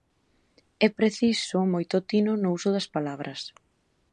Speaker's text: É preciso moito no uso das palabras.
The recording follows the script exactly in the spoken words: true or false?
false